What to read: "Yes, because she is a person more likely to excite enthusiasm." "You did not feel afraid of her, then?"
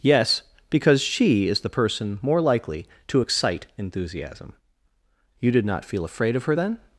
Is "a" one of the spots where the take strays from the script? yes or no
yes